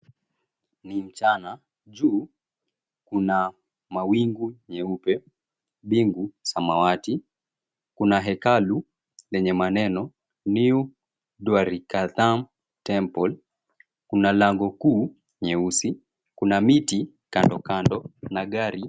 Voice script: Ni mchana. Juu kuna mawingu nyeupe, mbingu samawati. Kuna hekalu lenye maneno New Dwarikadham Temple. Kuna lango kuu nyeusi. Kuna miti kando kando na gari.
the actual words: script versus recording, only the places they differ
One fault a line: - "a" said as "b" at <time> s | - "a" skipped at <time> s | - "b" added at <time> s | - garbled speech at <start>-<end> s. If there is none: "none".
none